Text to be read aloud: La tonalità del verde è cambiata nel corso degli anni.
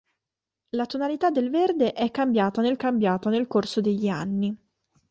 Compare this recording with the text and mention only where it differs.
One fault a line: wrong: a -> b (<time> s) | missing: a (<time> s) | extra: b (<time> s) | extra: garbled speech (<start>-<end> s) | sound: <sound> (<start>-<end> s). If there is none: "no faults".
extra: cambiata nel (2.7 s)